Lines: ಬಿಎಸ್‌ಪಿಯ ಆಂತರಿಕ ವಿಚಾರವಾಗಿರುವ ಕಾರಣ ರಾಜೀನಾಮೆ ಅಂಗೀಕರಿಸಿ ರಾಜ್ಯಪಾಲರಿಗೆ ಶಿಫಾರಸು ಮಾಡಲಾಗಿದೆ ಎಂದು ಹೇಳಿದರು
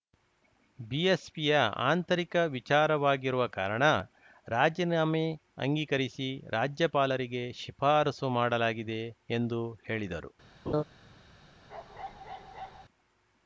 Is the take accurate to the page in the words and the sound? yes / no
no